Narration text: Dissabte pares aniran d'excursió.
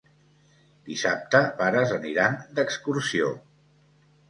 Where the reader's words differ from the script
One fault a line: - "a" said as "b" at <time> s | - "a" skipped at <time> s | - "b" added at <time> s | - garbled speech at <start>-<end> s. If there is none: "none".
none